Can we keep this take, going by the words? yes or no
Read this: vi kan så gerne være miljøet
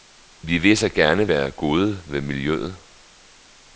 no